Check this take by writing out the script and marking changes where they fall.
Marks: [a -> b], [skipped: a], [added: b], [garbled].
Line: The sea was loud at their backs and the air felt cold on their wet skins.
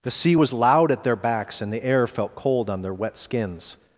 The sea was loud at their backs and the air felt cold on their wet skins.